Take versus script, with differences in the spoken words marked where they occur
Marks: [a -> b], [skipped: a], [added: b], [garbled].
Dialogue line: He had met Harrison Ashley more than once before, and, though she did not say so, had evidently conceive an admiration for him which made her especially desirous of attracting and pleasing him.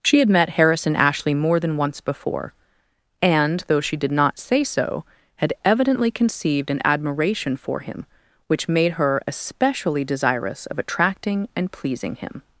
[He -> She] had met Harrison Ashley more than once before, and, though she did not say so, had evidently [conceive -> conceived] an admiration for him which made her especially desirous of attracting and pleasing him.